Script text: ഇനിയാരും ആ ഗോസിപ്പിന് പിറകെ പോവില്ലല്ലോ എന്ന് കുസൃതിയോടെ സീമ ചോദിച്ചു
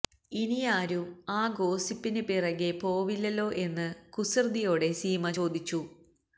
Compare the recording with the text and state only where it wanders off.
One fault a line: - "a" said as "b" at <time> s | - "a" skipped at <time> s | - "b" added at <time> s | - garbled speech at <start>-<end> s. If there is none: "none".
none